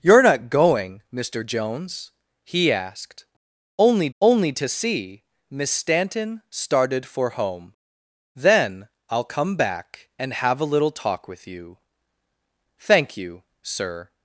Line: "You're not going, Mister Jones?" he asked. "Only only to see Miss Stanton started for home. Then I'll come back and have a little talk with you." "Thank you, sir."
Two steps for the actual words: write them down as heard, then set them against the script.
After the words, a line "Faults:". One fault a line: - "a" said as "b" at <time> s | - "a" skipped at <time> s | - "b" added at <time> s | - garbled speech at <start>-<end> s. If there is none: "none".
"You're not going, Mister Jones?" he asked. "Only only to see Miss Stanton started for home. Then I'll come back and have a little talk with you." "Thank you, sir."
Faults:
none